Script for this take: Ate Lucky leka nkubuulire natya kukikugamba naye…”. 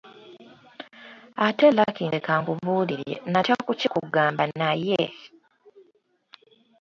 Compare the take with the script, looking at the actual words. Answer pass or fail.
pass